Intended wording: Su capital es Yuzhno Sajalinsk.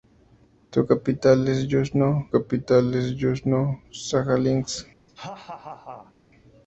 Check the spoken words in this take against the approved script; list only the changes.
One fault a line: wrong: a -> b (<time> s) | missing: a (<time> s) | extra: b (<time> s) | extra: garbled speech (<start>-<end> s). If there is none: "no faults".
extra: capital es Yuzhno (2.3 s)